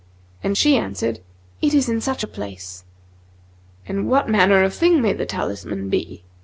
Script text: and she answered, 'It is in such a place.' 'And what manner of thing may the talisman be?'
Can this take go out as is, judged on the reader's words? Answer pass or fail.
pass